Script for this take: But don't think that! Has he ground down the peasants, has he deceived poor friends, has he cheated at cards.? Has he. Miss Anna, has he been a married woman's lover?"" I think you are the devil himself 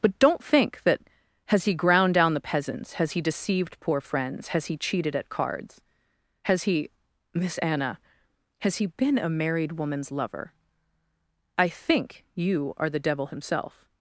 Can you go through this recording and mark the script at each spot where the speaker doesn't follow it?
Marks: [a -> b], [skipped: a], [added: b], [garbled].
But don't think that! Has he ground down the peasants, has he deceived poor friends, has he cheated at cards.? Has he. Miss Anna, has he been a married woman's lover?"" I think you are the devil himself